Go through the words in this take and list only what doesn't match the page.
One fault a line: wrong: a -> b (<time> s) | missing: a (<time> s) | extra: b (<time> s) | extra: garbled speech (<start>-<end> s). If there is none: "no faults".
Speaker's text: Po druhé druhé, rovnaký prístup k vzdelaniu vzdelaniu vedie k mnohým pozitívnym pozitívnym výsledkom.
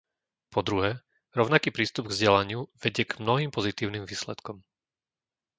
missing: druhé (1.0 s)
missing: vzdelaniu (2.7 s)
missing: pozitívnym (4.1 s)